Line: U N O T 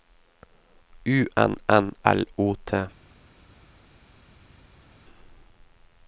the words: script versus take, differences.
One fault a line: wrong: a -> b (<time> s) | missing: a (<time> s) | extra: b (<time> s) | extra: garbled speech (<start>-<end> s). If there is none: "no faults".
extra: N L (1.7 s)